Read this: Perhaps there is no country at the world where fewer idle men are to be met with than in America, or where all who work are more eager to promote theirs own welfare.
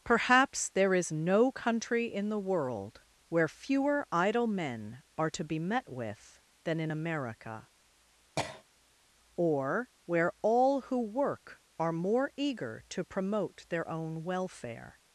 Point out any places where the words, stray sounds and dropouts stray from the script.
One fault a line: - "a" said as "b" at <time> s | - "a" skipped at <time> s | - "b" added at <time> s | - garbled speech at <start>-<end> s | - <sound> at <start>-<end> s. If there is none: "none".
- "at" said as "in" at 2.1 s
- cough at 8.4-8.6 s
- "theirs" said as "their" at 13.7 s